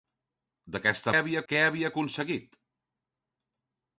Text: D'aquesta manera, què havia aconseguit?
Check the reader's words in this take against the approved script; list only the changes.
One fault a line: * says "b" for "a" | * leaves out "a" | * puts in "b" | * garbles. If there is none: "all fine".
* says "havia" for "manera"